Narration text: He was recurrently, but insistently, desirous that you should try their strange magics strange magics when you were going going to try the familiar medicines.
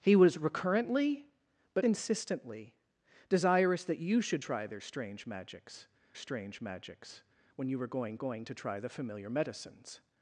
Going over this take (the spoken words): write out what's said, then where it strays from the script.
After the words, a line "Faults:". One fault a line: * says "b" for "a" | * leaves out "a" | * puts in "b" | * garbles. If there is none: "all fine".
He was recurrently, but insistently, desirous that you should try their strange magics strange magics when you were going going to try the familiar medicines.
Faults:
all fine